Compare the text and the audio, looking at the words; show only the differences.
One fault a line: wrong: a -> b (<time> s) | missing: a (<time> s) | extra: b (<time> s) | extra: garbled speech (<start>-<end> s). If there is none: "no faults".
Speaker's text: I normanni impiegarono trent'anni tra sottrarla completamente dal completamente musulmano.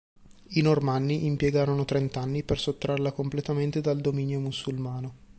wrong: tra -> per (2.4 s)
wrong: completamente -> dominio (4.0 s)